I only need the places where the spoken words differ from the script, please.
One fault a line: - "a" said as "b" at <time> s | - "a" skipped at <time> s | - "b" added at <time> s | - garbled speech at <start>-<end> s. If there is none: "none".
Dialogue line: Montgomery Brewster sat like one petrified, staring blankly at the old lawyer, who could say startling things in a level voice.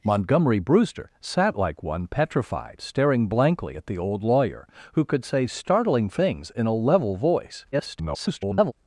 - garbled speech at 7.7-8.7 s